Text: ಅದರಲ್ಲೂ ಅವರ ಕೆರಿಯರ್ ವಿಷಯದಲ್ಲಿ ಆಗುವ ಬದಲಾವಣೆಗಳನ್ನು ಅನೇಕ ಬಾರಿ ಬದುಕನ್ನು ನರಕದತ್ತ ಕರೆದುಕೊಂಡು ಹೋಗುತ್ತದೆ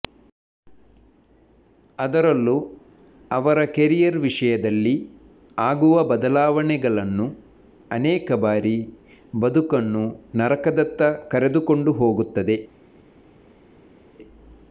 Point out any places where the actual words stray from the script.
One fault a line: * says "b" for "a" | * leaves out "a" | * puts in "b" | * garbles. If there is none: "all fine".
all fine